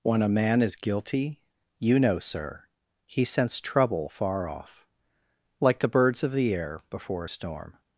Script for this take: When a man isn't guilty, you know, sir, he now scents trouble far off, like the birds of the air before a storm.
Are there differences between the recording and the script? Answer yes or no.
yes